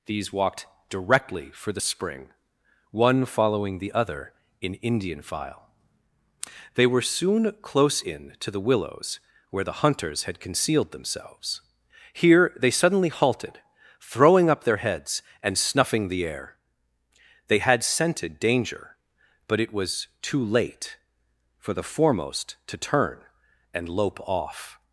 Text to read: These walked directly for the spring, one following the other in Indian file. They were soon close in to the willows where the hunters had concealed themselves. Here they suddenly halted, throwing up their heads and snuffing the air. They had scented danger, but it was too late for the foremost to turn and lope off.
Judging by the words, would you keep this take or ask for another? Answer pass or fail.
pass